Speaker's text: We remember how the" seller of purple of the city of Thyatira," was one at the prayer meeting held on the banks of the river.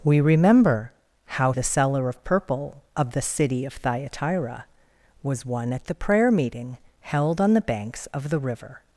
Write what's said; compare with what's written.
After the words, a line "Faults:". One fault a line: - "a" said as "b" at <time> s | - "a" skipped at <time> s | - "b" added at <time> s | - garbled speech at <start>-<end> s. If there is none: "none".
We remember how the" seller of purple of the city of Thyatira," was one at the prayer meeting held on the banks of the river.
Faults:
none